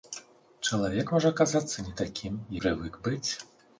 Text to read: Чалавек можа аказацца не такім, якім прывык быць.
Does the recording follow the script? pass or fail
fail